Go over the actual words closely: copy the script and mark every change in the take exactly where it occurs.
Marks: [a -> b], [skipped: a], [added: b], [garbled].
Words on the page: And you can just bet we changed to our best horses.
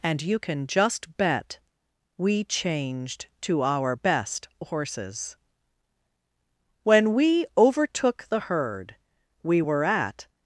And you can just bet we changed to our best horses. [added: When we overtook the herd we were at]